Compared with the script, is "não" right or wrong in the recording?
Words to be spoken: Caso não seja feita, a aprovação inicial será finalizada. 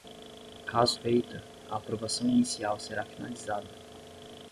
wrong